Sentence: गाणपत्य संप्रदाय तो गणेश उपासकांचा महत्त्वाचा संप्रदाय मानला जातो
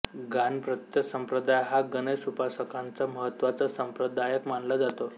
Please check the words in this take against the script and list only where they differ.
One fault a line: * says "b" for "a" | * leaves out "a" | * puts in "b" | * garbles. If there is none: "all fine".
* says "हा" for "तो"